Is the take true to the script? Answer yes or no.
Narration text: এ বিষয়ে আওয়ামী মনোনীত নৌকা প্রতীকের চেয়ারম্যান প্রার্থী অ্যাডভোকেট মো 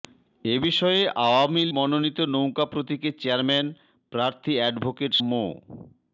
yes